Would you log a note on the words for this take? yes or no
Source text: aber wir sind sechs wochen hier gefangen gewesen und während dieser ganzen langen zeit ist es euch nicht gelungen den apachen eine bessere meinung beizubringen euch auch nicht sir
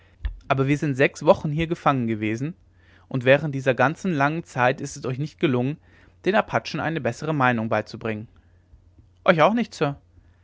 no